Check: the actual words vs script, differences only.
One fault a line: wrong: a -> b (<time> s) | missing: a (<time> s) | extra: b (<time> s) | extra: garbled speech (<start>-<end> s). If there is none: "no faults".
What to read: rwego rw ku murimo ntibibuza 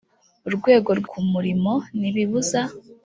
no faults